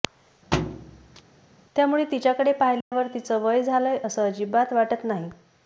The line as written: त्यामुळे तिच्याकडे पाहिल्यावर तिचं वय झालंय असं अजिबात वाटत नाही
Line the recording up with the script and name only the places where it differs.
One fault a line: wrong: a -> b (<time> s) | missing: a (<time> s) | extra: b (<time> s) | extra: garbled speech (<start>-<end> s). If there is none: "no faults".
no faults